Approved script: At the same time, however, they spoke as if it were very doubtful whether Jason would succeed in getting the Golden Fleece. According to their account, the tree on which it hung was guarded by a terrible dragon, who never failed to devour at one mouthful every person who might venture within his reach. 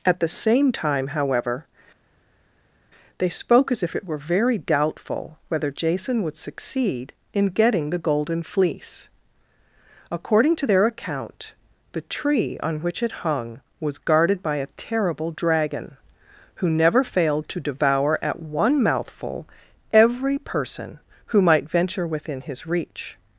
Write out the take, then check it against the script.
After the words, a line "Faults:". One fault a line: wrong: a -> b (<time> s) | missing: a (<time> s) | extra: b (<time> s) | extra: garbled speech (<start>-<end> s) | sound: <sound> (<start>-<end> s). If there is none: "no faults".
At the same time, however, they spoke as if it were very doubtful whether Jason would succeed in getting the Golden Fleece. According to their account, the tree on which it hung was guarded by a terrible dragon, who never failed to devour at one mouthful every person who might venture within his reach.
Faults:
no faults